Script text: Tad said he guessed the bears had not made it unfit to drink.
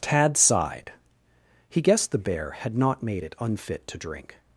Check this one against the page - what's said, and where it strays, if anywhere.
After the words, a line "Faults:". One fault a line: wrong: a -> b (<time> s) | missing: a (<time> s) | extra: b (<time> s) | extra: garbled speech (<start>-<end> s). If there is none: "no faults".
Tad sighed he guessed the bear had not made it unfit to drink.
Faults:
wrong: said -> sighed (0.3 s)
wrong: bears -> bear (2.2 s)